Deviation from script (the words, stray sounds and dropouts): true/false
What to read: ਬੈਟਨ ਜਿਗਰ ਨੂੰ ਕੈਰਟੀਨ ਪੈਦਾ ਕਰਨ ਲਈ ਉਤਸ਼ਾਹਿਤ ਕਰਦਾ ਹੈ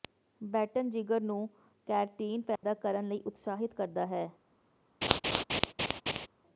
true